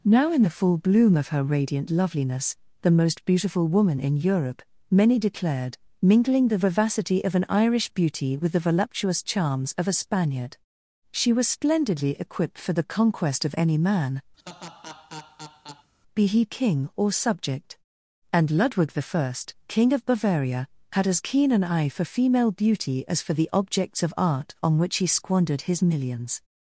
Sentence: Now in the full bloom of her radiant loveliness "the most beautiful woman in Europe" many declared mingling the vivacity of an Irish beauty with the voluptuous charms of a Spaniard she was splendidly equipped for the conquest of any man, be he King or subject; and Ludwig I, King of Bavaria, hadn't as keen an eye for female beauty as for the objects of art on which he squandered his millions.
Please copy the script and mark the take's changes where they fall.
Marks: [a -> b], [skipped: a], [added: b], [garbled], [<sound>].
Now in the full bloom of her radiant loveliness "the most beautiful woman in Europe" many declared mingling the vivacity of an Irish beauty with the voluptuous charms of a Spaniard she was splendidly equipped for the conquest of any man, [laugh] be he King or subject; and Ludwig I, King of Bavaria, [hadn't -> had] as keen an eye for female beauty as for the objects of art on which he squandered his millions.